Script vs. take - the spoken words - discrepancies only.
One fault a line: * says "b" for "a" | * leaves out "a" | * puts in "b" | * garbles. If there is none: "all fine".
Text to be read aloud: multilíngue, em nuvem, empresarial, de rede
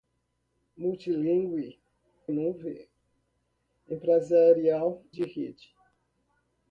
all fine